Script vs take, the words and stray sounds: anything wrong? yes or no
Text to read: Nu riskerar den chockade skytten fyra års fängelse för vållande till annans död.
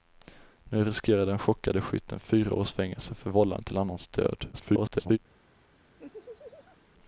yes